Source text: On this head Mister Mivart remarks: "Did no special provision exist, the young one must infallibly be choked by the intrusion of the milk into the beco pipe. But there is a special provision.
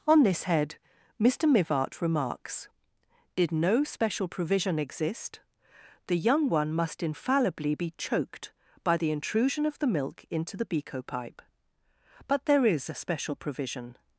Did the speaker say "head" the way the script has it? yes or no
yes